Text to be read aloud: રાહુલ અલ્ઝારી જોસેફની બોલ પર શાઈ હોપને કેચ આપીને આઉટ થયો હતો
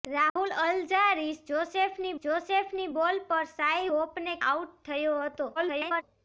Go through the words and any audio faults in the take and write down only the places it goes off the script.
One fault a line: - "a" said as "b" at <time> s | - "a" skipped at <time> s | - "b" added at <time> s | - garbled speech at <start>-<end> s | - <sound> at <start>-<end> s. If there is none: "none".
- dropout at 0.3-0.4 s
- "જોસેફની" added at 2.2 s
- "કેચ આપીને" skipped at 4.3 s
- garbled speech at 5.6-6.0 s